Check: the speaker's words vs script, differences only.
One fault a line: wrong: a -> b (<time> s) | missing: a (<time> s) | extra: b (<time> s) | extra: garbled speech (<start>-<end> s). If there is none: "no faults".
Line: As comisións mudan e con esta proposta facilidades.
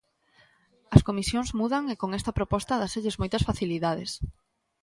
extra: dáselles moitas (2.8 s)